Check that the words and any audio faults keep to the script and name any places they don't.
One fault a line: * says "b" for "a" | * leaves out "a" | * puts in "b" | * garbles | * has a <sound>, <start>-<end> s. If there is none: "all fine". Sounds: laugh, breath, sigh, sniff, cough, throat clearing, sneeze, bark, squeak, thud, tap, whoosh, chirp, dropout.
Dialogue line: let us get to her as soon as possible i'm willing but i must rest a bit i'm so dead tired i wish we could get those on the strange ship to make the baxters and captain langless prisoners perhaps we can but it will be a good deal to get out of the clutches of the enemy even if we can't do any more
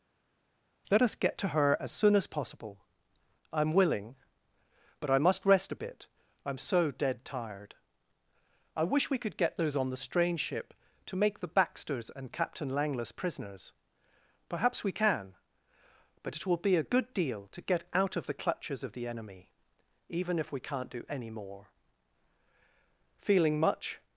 * puts in "feeling much"